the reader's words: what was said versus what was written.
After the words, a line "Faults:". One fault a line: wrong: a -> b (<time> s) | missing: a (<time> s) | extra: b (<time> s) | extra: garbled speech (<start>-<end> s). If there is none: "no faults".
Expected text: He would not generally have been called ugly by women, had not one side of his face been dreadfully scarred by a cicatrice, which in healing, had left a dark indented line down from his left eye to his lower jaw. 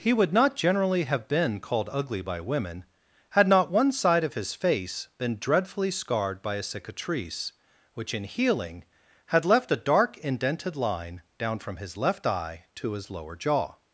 He would not generally have been called ugly by women, had not one side of his face been dreadfully scarred by a cicatrice, which in healing, had left a dark indented line down from his left eye to his lower jaw.
Faults:
no faults